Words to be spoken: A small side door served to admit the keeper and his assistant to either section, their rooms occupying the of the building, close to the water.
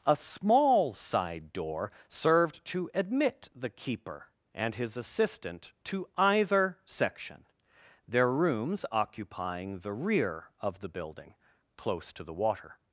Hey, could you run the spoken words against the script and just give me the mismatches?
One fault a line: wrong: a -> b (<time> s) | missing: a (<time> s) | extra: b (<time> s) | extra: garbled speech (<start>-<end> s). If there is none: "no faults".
extra: rear (9.9 s)